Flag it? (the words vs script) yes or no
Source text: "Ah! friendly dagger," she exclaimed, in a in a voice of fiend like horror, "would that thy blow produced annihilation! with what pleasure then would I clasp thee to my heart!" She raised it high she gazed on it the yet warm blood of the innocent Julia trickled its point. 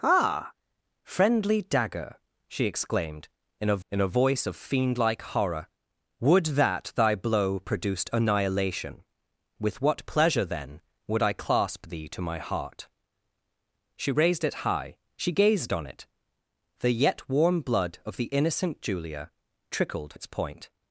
no